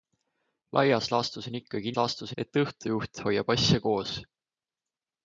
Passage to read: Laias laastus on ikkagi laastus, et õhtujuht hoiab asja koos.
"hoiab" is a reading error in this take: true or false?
false